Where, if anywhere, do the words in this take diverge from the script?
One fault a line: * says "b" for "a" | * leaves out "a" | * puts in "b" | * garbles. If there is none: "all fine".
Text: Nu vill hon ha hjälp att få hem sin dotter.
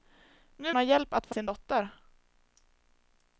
* leaves out "vill hon"
* leaves out "hem"